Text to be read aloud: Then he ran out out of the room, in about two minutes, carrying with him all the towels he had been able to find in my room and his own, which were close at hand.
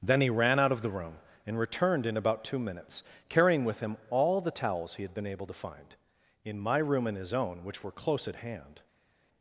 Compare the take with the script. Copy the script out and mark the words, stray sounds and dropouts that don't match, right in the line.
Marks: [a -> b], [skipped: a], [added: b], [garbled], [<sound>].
Then he ran out [skipped: out] of the room, [added: and returned] in about two minutes, carrying with him all the towels he had been able to find in my room and his own, which were close at hand.